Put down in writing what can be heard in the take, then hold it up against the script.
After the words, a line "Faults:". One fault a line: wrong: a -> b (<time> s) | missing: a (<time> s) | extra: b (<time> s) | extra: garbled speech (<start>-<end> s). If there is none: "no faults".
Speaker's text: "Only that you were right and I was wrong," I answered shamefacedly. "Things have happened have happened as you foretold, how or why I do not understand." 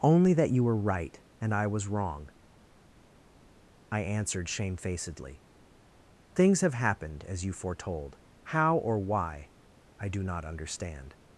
"Only that you were right and I was wrong," I answered shamefacedly. "Things have happened as you foretold, how or why I do not understand."
Faults:
missing: have happened (7.2 s)